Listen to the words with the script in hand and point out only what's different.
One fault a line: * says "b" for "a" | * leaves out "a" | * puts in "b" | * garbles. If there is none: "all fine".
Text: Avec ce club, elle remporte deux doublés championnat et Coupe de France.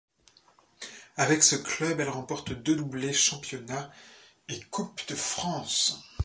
all fine